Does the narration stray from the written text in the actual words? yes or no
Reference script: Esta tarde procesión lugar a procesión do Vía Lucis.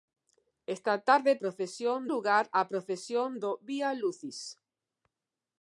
no